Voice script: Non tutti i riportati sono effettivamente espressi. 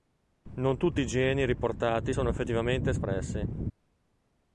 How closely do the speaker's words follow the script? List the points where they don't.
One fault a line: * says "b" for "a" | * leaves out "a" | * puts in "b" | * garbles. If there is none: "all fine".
* puts in "geni"